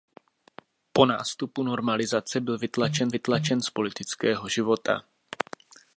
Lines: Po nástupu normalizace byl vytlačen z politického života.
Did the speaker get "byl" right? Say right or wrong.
right